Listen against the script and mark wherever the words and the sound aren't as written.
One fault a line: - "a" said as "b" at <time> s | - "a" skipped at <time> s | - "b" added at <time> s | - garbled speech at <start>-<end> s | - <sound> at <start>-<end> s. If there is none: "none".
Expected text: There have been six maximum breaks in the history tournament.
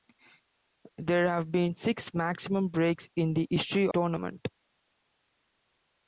none